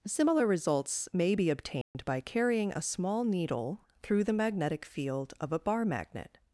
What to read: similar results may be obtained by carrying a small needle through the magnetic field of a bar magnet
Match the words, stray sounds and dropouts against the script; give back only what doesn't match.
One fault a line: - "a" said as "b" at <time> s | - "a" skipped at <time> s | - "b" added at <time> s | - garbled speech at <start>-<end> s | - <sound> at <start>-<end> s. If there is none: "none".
- dropout at 1.8-1.9 s